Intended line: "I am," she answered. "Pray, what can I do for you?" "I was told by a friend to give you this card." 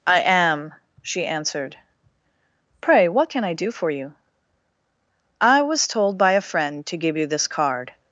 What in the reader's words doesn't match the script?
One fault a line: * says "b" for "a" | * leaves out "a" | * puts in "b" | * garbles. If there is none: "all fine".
all fine